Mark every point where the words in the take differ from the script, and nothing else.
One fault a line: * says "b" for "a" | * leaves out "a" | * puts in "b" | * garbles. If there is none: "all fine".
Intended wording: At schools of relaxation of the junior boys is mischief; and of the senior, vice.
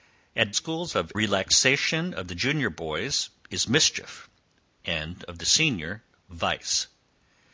all fine